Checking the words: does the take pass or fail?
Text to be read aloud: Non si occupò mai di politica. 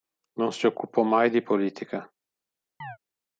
pass